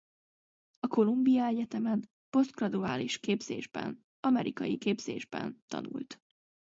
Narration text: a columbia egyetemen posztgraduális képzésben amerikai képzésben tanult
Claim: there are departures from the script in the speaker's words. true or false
false